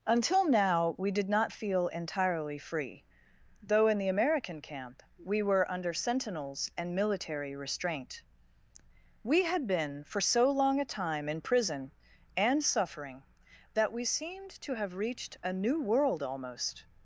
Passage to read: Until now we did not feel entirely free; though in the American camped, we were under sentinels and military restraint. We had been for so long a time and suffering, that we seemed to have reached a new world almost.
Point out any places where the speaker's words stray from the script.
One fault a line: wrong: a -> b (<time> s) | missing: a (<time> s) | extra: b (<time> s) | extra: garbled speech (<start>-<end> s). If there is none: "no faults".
wrong: camped -> camp (4.6 s)
extra: in prison (11.3 s)